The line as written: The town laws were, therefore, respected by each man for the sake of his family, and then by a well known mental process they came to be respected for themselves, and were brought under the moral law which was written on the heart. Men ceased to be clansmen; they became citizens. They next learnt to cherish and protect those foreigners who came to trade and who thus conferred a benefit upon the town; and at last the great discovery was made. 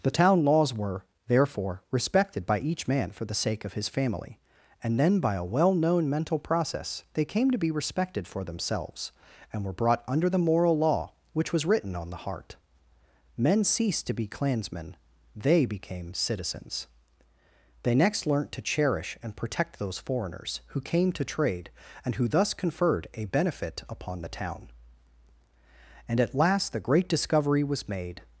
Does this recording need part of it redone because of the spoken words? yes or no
no